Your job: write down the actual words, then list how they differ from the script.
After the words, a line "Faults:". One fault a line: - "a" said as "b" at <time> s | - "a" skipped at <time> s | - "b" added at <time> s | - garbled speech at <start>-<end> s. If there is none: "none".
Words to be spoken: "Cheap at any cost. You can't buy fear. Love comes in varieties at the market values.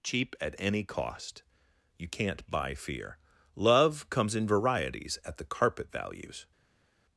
"Cheap at any cost. You can't buy fear. Love comes in varieties at the carpet values.
Faults:
- "market" said as "carpet" at 5.5 s